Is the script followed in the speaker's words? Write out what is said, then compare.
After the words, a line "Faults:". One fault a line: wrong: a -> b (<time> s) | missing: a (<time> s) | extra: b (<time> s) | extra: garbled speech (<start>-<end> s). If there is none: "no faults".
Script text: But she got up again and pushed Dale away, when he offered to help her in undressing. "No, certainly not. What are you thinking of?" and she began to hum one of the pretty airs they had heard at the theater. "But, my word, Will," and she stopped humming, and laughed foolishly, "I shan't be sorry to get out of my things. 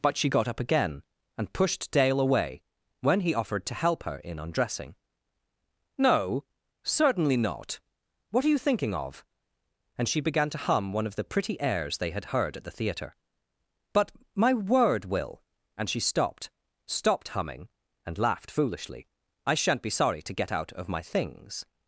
But she got up again and pushed Dale away, when he offered to help her in undressing. "No, certainly not. What are you thinking of?" and she began to hum one of the pretty airs they had heard at the theater. "But, my word, Will," and she stopped stopped humming, and laughed foolishly, "I shan't be sorry to get out of my things.
Faults:
extra: stopped (16.9 s)